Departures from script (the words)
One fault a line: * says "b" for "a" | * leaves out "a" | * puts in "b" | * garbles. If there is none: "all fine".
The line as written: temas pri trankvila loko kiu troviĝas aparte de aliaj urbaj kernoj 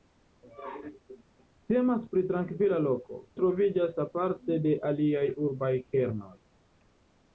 * leaves out "kiu"